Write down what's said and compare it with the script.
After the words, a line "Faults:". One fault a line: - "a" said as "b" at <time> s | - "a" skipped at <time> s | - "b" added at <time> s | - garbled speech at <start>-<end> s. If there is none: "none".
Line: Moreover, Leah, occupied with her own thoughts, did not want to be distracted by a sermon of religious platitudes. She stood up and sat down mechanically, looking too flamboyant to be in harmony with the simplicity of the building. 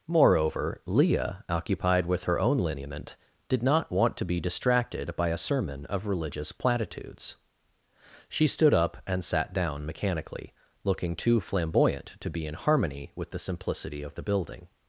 Moreover, Leah, occupied with her own lineament, did not want to be distracted by a sermon of religious platitudes. She stood up and sat down mechanically, looking too flamboyant to be in harmony with the simplicity of the building.
Faults:
- "thoughts" said as "lineament" at 2.6 s